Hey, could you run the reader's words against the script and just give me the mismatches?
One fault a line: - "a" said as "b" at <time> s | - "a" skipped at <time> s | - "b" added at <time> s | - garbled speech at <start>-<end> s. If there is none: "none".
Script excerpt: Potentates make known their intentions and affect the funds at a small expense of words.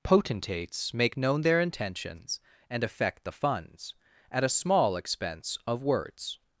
none